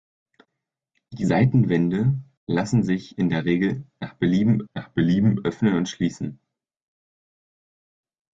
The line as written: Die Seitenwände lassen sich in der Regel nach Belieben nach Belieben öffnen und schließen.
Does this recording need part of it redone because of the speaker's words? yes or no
no